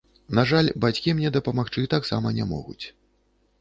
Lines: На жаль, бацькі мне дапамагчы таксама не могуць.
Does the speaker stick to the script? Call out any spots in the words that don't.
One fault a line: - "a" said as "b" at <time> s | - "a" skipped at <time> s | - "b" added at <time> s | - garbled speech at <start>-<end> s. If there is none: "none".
none